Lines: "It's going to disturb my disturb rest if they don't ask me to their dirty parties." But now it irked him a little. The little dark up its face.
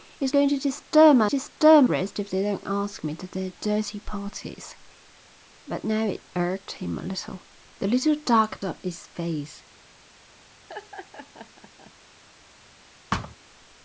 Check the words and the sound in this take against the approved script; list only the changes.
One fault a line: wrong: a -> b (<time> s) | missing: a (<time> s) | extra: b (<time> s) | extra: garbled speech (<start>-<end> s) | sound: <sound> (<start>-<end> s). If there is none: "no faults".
sound: laugh (10.7-11.9 s)
sound: thud (13.1-13.4 s)